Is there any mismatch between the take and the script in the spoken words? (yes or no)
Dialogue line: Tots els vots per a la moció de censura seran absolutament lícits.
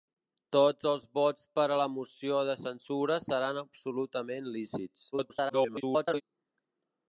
yes